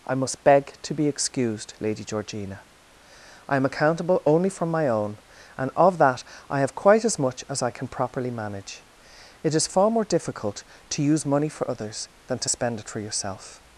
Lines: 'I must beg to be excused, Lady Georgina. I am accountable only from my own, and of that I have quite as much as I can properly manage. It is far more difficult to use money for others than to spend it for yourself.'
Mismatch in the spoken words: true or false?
false